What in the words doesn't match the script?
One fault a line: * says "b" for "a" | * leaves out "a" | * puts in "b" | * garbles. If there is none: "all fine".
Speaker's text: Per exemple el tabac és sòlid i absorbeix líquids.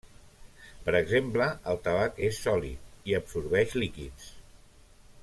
all fine